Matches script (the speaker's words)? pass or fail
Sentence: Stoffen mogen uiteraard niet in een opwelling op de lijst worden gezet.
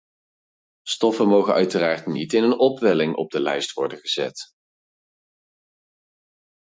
pass